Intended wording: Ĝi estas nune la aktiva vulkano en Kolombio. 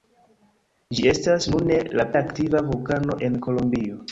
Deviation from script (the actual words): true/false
false